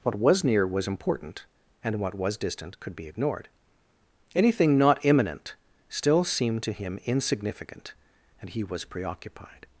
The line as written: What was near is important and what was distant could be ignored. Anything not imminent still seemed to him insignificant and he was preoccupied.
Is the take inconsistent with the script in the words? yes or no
yes